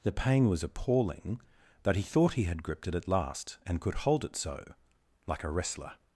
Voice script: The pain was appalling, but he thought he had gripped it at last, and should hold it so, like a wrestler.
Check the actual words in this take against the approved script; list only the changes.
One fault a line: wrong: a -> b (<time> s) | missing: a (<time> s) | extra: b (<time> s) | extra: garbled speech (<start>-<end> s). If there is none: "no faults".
wrong: should -> could (3.8 s)